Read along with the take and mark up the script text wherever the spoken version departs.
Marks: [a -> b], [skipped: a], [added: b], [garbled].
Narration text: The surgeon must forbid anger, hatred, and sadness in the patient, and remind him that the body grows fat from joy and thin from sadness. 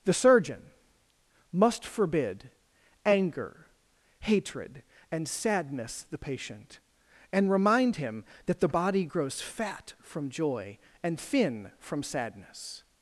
The surgeon must forbid anger, hatred, and sadness [skipped: in] the patient, and remind him that the body grows fat from joy and thin from sadness.